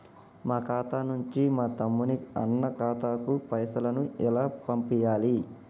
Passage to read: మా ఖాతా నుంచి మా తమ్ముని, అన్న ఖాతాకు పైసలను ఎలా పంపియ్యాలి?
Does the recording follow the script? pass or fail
pass